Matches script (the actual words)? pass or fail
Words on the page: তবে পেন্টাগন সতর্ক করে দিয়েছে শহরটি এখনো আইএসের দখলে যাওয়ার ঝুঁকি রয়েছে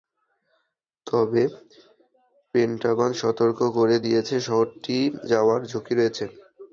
fail